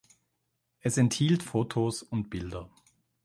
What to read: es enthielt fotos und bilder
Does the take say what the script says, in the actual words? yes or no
yes